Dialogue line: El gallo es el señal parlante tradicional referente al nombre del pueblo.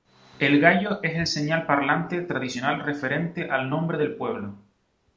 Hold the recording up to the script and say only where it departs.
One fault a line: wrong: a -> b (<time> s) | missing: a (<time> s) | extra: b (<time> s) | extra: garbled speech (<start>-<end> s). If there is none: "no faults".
no faults